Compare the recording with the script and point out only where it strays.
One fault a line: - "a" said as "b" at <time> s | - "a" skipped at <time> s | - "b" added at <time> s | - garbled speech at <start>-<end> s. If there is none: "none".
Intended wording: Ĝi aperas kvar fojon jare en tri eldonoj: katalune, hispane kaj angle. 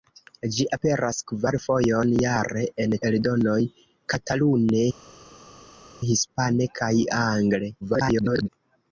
- "tri" skipped at 3.0 s
- garbled speech at 7.8-8.5 s